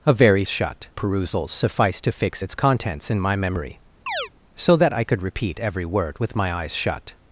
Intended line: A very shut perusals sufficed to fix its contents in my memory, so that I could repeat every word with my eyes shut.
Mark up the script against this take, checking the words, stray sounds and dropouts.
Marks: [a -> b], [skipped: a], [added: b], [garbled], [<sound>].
A very shut perusals sufficed to fix its contents in my memory, [chirp] so that I could repeat every word with my eyes shut.